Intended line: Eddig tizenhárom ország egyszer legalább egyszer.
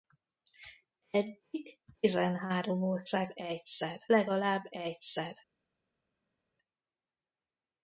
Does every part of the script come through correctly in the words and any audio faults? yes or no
yes